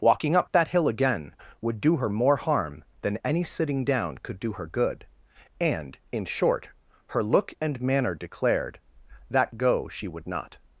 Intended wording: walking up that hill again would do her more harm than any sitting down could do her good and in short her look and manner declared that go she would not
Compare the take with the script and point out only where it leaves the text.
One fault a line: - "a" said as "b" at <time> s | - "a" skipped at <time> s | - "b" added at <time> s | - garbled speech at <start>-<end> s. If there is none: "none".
none